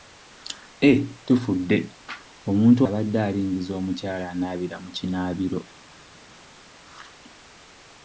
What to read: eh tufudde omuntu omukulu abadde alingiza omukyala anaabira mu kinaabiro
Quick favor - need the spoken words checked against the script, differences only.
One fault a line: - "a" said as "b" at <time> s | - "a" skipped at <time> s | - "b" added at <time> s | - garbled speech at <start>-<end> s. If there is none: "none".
- "omukulu" skipped at 2.8 s